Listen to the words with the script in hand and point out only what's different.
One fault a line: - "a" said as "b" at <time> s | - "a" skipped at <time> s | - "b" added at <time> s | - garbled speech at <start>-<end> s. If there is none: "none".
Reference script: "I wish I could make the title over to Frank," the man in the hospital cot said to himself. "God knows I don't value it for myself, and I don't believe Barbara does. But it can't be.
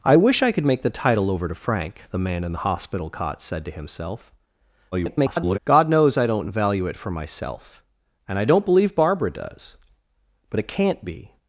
- garbled speech at 4.9-5.6 s